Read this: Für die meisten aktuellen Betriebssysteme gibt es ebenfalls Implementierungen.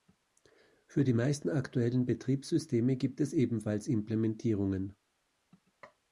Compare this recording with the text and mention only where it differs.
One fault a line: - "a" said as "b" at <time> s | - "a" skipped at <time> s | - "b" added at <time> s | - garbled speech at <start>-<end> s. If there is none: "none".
none